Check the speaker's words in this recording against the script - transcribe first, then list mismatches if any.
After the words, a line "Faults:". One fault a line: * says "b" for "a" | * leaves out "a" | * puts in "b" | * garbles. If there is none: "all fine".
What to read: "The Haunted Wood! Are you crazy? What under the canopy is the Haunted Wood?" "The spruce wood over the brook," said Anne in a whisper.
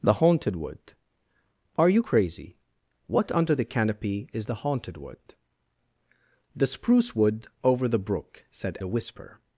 "The Haunted Wood! Are you crazy? What under the canopy is the Haunted Wood?" "The spruce wood over the brook," said A whisper.
Faults:
* leaves out "Anne in"